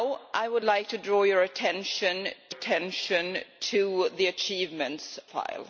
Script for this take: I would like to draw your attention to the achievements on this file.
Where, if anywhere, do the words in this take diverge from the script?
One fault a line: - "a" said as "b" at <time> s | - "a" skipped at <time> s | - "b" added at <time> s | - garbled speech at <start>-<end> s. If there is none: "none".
- "attention" added at 2.5 s
- "on this" skipped at 5.2 s